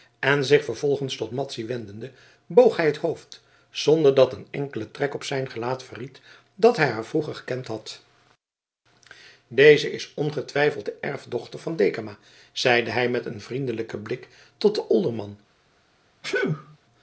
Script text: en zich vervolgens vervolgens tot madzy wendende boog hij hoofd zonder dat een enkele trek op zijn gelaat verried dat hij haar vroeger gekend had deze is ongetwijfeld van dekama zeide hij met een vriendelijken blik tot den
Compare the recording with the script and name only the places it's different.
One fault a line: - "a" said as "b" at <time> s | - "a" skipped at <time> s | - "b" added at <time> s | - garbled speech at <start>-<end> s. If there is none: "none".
- "vervolgens" skipped at 1.1 s
- "het" added at 2.9 s
- "de erfdochter" added at 10.8 s